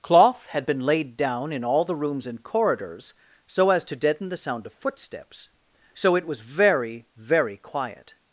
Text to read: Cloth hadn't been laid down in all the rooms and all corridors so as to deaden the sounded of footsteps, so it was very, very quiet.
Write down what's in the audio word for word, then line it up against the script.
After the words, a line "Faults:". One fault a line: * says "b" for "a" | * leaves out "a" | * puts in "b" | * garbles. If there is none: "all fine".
Cloth had been laid down in all the rooms and corridors so as to deaden the sound of footsteps, so it was very, very quiet.
Faults:
* says "had" for "hadn't"
* leaves out "all"
* says "sound" for "sounded"